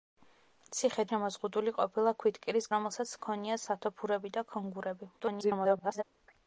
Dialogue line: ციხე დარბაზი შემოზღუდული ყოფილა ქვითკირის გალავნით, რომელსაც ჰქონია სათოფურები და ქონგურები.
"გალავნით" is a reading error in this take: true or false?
true